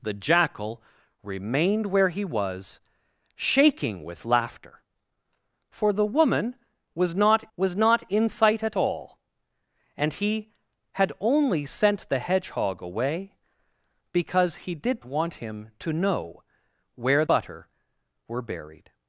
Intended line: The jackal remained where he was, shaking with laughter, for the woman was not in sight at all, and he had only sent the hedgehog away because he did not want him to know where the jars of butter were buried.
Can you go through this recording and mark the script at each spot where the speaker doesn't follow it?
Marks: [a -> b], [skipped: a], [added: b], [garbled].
The jackal remained where he was, shaking with laughter, for the woman was not [added: was not] in sight at all, and he had only sent the hedgehog away because he did [skipped: not] want him to know where [skipped: the jars of] butter were buried.